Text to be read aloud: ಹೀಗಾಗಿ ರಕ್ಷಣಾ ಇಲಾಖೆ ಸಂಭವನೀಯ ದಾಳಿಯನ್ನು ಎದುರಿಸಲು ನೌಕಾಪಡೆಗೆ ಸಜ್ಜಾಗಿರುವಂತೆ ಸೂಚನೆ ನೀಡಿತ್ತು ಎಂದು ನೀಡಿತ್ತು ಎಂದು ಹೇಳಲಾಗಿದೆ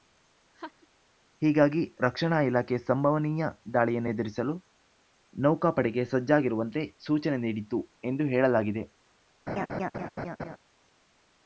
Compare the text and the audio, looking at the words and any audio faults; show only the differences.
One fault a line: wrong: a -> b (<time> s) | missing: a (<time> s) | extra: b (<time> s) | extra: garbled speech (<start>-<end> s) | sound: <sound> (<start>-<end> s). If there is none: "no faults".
sound: laugh (0.5-0.9 s)
missing: ನೀಡಿತ್ತು ಎಂದು (8.2 s)
sound: laugh (9.5-10.6 s)